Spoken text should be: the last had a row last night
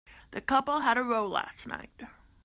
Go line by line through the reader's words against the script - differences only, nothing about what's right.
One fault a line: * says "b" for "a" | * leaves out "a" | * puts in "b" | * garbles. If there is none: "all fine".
* says "couple" for "last"